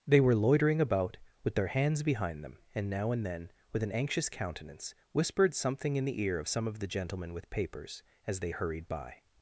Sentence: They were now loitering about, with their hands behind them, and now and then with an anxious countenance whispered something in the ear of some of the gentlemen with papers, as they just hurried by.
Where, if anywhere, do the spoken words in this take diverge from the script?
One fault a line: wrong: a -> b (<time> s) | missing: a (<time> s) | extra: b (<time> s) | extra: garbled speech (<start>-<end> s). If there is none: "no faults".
missing: now (0.3 s)
missing: just (8.5 s)